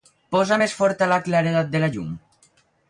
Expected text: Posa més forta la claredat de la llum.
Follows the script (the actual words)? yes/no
yes